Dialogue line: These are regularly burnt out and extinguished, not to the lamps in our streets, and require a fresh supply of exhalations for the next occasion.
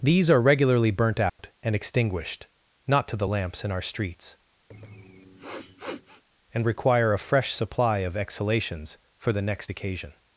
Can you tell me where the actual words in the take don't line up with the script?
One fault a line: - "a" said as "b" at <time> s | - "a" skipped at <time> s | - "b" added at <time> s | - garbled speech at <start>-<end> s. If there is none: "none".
none